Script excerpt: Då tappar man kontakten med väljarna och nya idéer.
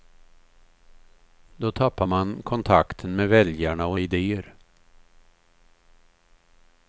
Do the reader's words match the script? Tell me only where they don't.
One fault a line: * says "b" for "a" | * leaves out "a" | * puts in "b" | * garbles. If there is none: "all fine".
* leaves out "nya"